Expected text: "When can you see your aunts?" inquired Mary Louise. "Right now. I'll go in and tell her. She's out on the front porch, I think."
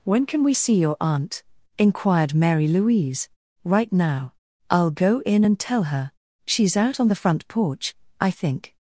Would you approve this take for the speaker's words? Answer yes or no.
no